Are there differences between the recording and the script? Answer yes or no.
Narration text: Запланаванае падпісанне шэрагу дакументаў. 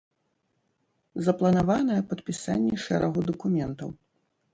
no